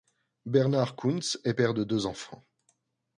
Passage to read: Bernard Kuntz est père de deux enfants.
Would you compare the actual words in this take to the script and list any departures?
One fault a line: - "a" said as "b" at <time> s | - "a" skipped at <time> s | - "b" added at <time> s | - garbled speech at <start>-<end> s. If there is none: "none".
none